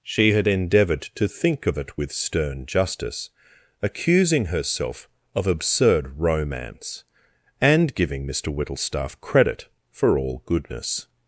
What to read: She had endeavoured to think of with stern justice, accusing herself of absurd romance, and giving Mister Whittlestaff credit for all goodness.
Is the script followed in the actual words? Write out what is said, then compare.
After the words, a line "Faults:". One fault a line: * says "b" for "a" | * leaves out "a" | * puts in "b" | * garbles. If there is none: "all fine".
She had endeavoured to think of it with stern justice, accusing herself of absurd romance, and giving Mister Whittlestaff credit for all goodness.
Faults:
* puts in "it"